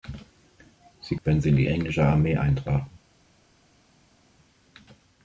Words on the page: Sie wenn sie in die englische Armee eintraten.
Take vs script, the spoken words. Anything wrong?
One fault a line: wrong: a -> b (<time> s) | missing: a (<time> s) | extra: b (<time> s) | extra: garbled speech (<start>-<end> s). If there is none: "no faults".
no faults